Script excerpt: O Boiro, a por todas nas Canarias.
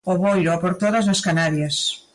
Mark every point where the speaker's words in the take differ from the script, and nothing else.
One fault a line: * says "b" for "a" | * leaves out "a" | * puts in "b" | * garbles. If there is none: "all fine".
all fine